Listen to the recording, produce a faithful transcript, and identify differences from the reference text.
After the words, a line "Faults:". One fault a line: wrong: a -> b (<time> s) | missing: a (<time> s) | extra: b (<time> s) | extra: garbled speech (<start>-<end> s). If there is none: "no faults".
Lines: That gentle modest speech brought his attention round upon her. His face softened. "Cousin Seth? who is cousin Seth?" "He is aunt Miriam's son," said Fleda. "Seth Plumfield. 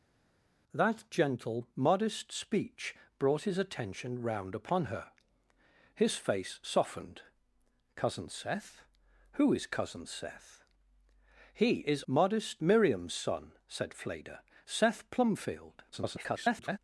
That gentle modest speech brought his attention round upon her. His face softened. "Cousin Seth? who is cousin Seth?" "He is modest Miriam's son," said Fleda. "Seth Plumfield. [garbled]
Faults:
wrong: aunt -> modest (12.0 s)
extra: garbled speech (15.9-16.8 s)